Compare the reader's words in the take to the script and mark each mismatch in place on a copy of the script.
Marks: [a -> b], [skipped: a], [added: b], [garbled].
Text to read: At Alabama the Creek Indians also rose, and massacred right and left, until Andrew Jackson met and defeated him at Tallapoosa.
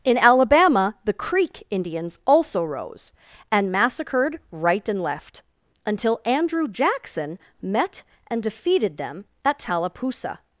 [At -> In] Alabama the Creek Indians also rose, and massacred right and left, until Andrew Jackson met and defeated [him -> them] at Tallapoosa.